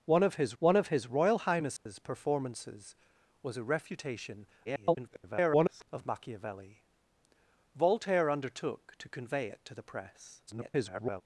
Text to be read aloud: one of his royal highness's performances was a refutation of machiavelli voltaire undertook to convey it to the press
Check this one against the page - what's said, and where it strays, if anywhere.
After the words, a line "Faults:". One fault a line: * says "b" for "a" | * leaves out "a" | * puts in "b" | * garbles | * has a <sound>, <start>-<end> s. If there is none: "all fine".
one of his one of his royal highness's performances was a refutation [garbled] of machiavelli voltaire undertook to convey it to the press [garbled]
Faults:
* puts in "one of his"
* has a dropout, 1.8-1.9 s
* garbles
* garbles